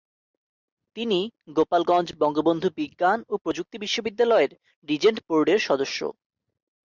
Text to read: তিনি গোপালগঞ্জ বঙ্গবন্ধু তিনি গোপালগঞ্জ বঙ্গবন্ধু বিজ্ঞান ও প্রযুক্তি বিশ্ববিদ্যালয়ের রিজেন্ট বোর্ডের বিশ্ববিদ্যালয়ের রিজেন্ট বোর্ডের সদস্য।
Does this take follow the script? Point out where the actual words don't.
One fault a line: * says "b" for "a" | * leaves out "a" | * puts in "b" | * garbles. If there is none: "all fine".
* leaves out "তিনি গোপালগঞ্জ বঙ্গবন্ধু"
* leaves out "বিশ্ববিদ্যালয়ের রিজেন্ট বোর্ডের"